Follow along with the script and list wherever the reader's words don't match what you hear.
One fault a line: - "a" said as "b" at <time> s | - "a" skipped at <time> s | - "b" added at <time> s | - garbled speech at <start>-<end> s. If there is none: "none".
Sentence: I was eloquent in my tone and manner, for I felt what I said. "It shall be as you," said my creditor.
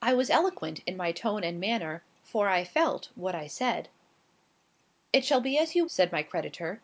none